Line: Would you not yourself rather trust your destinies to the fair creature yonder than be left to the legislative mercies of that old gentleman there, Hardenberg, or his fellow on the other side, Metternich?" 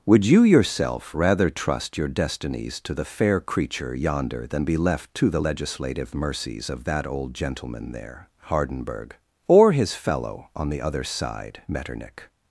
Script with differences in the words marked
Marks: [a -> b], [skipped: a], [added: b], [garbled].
Would you [skipped: not] yourself rather trust your destinies to the fair creature yonder than be left to the legislative mercies of that old gentleman there, Hardenberg, or his fellow on the other side, Metternich?"